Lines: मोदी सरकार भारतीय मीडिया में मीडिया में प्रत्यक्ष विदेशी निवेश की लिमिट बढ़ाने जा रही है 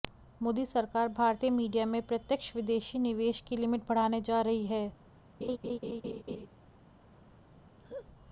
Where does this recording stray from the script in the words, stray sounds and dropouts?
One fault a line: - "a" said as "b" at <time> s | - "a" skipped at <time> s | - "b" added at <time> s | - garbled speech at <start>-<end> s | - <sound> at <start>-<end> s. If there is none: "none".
- "मीडिया में" skipped at 2.0 s
- laugh at 5.4-6.5 s
- laugh at 7.8-8.1 s